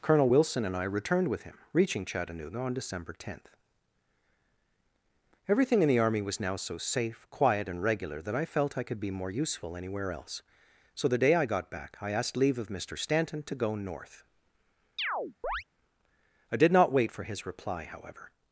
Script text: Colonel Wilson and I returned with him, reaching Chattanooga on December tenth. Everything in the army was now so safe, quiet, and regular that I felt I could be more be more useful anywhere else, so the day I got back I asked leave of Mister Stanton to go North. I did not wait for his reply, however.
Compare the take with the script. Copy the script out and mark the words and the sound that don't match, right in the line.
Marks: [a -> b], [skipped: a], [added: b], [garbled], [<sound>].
Colonel Wilson and I returned with him, reaching Chattanooga on December tenth. Everything in the army was now so safe, quiet, and regular that I felt I could be more [skipped: be more] useful anywhere else, so the day I got back I asked leave of Mister Stanton to go North. [chirp] I did not wait for his reply, however.